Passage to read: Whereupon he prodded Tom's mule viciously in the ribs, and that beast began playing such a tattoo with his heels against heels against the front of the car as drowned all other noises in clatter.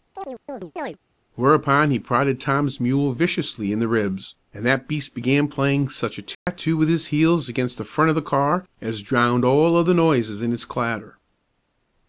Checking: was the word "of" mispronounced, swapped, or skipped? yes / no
no